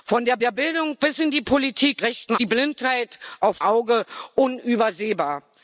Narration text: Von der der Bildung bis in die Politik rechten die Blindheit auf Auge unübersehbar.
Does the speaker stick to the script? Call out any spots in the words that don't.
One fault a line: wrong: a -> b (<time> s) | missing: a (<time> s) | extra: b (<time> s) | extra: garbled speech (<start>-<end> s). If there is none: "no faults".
no faults